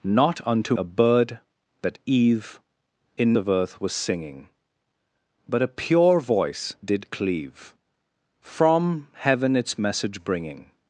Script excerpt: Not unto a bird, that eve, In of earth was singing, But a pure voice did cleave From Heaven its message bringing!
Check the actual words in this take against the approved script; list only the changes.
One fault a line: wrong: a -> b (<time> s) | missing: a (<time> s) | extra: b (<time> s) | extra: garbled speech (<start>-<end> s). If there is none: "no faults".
no faults